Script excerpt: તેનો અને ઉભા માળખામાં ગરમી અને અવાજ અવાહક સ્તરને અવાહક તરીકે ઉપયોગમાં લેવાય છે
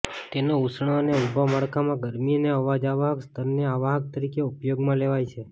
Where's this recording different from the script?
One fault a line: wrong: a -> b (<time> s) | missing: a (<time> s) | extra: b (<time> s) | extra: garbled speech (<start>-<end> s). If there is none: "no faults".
extra: ઉષ્ણ (0.6 s)